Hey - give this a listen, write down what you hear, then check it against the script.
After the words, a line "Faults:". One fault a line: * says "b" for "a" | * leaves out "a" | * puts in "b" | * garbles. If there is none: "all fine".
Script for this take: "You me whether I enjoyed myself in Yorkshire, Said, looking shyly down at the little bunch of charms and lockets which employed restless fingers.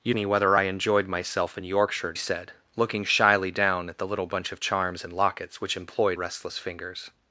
"You me whether I enjoyed myself in Yorkshire, Said, looking shyly down at the little bunch of charms and lockets which employed restless fingers.
Faults:
all fine